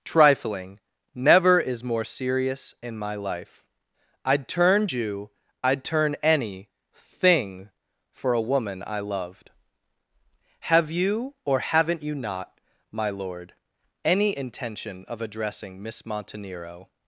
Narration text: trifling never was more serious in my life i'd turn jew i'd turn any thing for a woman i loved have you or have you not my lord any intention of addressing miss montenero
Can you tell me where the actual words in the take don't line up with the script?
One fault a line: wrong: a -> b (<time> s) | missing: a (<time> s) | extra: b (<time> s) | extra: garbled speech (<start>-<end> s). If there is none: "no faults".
wrong: was -> is (1.6 s)
wrong: have -> haven't (11.6 s)